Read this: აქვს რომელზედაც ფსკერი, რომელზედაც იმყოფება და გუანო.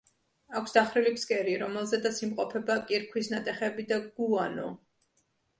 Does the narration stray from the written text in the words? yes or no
yes